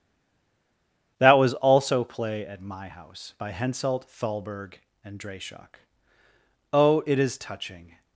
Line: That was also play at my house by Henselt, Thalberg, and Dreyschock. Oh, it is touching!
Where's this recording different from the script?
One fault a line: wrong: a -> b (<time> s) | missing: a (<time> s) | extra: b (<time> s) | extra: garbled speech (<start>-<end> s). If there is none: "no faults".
no faults